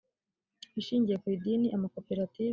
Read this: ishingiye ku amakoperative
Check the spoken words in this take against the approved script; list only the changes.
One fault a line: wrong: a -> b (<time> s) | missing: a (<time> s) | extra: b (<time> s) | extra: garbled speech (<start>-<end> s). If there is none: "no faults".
extra: idini (1.4 s)